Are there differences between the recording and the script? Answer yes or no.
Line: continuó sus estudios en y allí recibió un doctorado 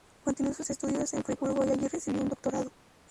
yes